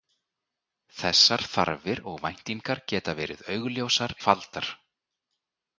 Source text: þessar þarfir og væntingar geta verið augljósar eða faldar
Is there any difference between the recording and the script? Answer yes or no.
yes